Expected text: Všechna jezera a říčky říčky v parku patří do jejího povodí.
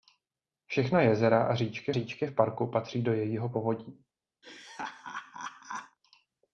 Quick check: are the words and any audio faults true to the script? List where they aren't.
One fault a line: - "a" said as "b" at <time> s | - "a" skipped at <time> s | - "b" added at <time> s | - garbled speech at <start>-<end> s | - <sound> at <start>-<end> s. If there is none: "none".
- laugh at 4.4-6.0 s